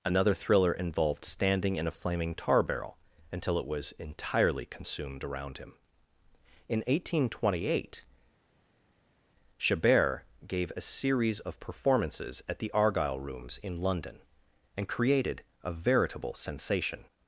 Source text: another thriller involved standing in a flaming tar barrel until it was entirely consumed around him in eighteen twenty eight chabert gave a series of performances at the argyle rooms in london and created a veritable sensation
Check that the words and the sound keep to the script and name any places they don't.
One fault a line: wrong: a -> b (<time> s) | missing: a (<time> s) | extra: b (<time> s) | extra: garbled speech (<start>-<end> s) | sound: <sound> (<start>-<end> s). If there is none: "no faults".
no faults